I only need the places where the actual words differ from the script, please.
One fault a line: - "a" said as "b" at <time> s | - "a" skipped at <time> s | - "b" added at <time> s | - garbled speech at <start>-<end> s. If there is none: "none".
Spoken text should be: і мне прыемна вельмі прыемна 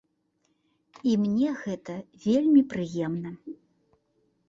- "прыемна" said as "гэта" at 1.6 s